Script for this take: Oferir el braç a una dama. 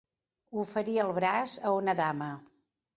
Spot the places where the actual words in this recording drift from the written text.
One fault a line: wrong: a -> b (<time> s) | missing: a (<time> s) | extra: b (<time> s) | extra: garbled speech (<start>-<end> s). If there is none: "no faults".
no faults